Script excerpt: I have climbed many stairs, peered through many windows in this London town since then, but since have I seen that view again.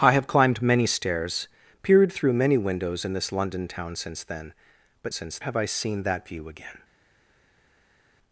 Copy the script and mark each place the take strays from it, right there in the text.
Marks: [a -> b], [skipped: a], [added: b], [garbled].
I have climbed many stairs, peered through many windows in this London town since then, but since have I seen that view again.